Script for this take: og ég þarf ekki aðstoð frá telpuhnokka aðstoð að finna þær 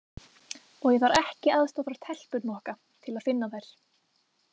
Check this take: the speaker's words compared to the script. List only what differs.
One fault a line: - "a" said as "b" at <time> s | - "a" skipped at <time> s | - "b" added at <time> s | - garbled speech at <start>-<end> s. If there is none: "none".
- "aðstoð" said as "til" at 3.1 s